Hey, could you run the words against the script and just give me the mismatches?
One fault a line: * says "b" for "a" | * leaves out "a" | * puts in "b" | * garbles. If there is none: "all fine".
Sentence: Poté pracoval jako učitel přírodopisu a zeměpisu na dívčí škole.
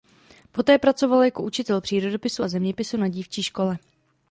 all fine